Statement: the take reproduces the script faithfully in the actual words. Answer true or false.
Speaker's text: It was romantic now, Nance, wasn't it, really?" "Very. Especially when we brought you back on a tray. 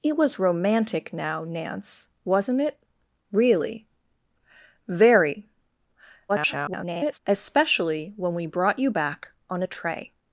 false